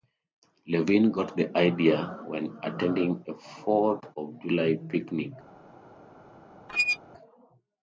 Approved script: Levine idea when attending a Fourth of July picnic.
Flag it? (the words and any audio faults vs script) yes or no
yes